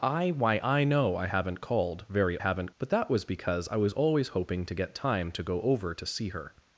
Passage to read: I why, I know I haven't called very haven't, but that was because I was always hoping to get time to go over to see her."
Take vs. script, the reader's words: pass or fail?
pass